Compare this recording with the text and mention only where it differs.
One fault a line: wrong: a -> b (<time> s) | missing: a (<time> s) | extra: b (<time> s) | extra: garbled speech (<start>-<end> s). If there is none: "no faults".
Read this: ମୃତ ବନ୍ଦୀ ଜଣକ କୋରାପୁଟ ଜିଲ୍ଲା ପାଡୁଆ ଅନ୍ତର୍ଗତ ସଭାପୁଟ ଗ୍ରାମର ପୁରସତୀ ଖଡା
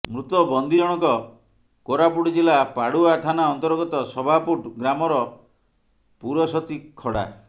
extra: ଥାନା (3.2 s)